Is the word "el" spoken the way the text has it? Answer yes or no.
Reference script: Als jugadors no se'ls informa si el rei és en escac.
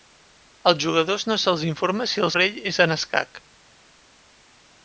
yes